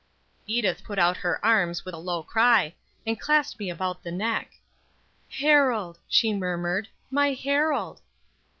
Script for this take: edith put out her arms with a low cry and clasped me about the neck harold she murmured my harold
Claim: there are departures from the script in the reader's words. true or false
false